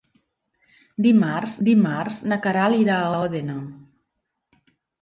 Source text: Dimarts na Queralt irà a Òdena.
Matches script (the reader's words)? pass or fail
fail